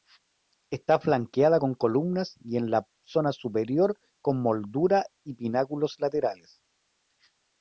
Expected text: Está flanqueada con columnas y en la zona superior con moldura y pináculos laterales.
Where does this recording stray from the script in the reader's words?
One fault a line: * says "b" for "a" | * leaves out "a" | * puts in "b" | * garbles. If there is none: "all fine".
all fine